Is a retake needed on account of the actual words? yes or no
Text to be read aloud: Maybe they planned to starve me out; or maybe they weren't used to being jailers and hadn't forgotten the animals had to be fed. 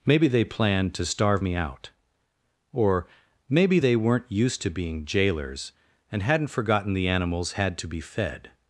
no